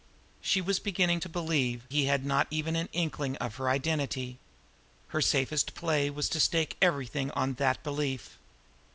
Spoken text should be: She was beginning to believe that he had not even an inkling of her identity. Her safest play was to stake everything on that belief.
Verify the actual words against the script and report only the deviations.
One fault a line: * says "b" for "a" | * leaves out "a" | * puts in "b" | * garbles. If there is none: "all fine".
* leaves out "that"